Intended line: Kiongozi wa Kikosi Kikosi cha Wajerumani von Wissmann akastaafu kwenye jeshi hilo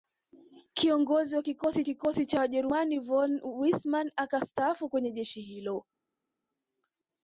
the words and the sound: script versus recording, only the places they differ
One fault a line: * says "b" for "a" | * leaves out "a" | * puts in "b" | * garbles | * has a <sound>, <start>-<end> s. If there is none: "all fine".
all fine